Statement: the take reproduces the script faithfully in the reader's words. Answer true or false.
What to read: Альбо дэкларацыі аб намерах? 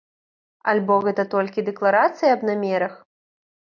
false